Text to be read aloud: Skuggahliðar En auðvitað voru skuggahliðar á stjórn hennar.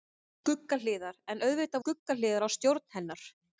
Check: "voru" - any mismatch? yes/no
yes